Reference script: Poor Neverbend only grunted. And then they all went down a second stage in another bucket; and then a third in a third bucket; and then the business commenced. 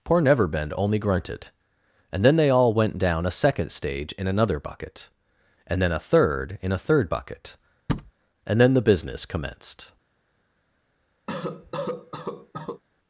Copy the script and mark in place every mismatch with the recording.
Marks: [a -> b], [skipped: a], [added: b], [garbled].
Poor Neverbend only grunted. And then they all went down a second stage in another bucket; and then a third in a third bucket; and then the business commenced.